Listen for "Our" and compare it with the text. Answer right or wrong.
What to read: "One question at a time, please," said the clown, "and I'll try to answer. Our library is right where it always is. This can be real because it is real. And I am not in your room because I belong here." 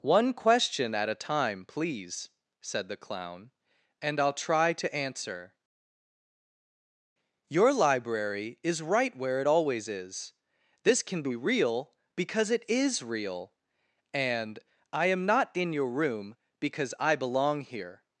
wrong